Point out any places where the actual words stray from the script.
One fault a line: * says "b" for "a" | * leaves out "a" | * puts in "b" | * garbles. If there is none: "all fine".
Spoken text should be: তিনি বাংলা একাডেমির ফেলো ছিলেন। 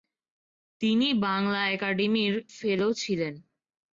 all fine